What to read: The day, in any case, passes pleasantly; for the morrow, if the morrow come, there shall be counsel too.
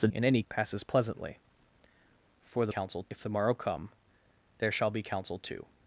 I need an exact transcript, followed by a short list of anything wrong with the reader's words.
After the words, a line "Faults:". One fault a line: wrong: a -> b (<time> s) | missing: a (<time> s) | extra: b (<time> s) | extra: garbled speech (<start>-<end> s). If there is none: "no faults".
The in any passes pleasantly; for the counsel, if the morrow come, there shall be counsel too.
Faults:
missing: day (0.1 s)
missing: case (0.4 s)
wrong: morrow -> counsel (2.7 s)